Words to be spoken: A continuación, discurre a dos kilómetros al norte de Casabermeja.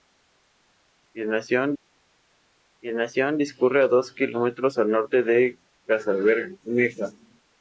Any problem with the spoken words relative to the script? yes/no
yes